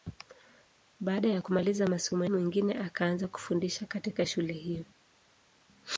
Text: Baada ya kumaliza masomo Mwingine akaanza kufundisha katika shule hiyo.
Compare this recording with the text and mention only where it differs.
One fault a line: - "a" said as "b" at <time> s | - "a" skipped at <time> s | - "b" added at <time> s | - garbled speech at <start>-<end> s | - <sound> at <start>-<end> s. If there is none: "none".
none